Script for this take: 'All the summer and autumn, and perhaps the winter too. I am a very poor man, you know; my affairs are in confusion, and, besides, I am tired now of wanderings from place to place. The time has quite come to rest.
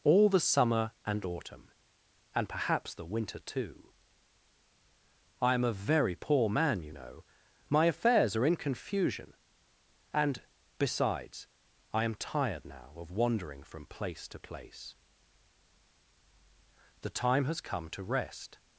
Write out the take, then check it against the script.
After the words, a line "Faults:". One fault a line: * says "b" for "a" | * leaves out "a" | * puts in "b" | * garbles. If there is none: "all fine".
'All the summer and autumn, and perhaps the winter too. I am a very poor man, you know; my affairs are in confusion, and, besides, I am tired now of wandering from place to place. The time has come to rest.
Faults:
* says "wandering" for "wanderings"
* leaves out "quite"